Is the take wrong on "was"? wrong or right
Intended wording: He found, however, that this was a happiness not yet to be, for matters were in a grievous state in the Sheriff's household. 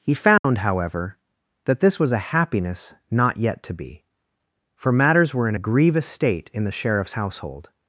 right